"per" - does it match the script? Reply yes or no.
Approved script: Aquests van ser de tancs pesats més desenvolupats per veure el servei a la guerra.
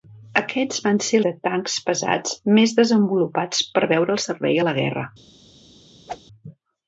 yes